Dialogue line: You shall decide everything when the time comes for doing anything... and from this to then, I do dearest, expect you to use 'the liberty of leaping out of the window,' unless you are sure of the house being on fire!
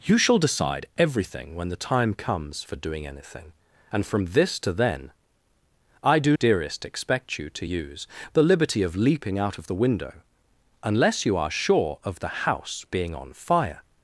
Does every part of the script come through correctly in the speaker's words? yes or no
yes